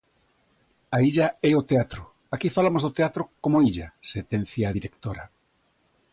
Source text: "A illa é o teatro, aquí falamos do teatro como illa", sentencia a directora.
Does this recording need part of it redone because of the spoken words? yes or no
no